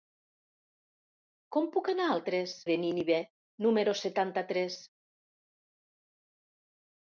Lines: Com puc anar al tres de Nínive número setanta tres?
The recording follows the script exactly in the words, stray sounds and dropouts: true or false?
true